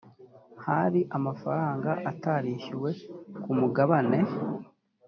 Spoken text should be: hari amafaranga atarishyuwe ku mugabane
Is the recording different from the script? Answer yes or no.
no